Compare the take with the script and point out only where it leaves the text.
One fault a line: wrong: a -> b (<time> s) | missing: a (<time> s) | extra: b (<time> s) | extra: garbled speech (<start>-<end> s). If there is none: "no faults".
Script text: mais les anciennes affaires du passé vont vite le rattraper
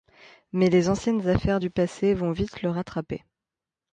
no faults